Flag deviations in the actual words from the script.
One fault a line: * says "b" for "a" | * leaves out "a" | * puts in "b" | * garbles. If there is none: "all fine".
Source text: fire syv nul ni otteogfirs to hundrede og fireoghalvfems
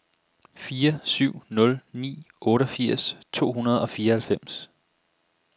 all fine